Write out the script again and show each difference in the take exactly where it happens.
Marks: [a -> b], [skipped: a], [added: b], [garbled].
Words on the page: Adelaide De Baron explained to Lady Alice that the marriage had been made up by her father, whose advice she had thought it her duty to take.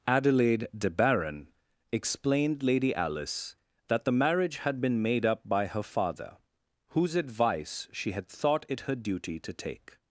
Adelaide De Baron explained [skipped: to] Lady Alice that the marriage had been made up by her father, whose advice she had thought it her duty to take.